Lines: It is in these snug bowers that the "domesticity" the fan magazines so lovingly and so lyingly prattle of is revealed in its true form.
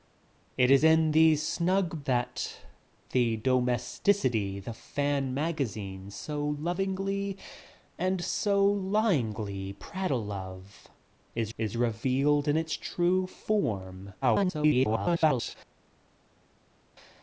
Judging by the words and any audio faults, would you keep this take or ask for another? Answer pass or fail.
fail